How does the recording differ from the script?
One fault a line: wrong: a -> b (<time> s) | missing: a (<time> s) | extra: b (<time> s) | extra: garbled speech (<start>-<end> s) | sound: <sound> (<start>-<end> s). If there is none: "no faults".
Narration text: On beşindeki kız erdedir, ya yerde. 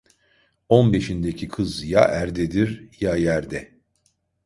extra: ya (1.8 s)